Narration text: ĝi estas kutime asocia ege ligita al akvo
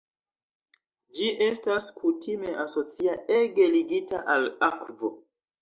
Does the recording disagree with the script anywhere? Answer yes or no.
no